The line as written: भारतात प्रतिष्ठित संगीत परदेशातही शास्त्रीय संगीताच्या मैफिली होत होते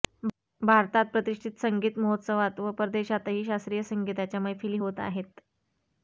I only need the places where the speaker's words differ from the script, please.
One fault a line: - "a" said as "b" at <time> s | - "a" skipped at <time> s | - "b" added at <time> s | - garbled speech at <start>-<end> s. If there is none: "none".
- "महोत्सवात व" added at 2.0 s
- "होते" said as "आहेत" at 5.0 s